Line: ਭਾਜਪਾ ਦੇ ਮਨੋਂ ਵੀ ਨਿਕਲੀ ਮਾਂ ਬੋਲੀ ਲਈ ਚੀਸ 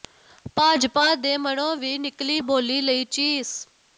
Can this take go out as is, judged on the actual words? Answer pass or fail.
fail